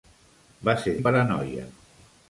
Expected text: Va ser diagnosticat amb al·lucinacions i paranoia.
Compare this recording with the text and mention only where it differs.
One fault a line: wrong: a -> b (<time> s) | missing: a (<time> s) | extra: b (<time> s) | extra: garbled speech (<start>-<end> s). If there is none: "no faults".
missing: diagnosticat amb al·lucinacions (0.9 s)